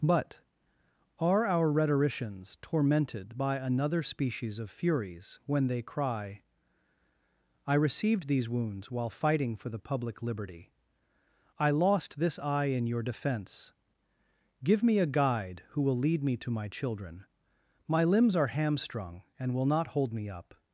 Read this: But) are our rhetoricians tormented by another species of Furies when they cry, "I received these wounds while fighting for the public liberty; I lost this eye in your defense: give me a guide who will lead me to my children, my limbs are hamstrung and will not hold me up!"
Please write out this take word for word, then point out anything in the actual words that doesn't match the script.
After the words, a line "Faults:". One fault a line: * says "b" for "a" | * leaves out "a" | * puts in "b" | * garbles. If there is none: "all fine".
But) are our rhetoricians tormented by another species of Furies when they cry, "I received these wounds while fighting for the public liberty; I lost this eye in your defense: give me a guide who will lead me to my children, my limbs are hamstrung and will not hold me up!"
Faults:
all fine